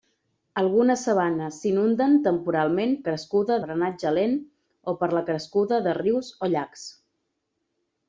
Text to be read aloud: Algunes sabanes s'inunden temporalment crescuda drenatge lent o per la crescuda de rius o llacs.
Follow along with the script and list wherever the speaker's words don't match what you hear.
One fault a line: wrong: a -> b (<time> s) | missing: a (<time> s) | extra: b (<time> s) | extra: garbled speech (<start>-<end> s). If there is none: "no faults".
no faults